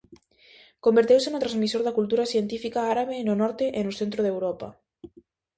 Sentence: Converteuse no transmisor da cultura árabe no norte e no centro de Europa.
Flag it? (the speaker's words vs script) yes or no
yes